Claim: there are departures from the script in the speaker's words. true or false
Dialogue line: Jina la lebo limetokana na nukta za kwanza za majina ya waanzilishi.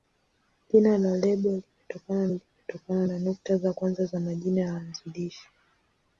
true